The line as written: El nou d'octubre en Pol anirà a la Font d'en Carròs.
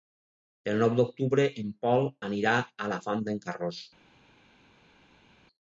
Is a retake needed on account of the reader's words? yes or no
no